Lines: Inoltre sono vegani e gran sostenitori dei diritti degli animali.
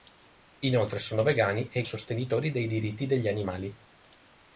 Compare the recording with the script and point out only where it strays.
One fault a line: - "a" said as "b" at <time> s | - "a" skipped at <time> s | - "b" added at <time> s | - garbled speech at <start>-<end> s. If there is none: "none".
- "gran" skipped at 1.8 s